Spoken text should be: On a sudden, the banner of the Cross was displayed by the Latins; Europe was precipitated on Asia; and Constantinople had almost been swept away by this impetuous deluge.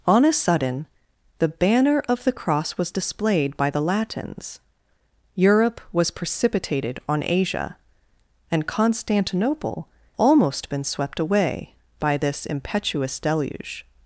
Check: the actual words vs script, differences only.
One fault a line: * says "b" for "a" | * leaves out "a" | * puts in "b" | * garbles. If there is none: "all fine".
* leaves out "had"